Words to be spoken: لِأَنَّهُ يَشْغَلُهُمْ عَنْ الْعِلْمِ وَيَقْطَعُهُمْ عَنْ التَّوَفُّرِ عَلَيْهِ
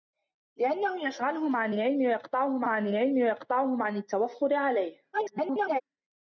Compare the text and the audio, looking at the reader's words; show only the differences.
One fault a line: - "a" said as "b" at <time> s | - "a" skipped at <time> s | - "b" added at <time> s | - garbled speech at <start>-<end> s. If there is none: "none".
- "الْعِلْمِ وَيَقْطَعُهُمْ عَنْ" added at 2.9 s
- garbled speech at 5.1-5.8 s